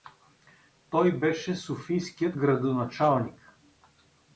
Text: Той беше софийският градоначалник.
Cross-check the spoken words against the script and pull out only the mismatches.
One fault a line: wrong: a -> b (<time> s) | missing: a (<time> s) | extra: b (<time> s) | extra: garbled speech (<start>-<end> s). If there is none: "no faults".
no faults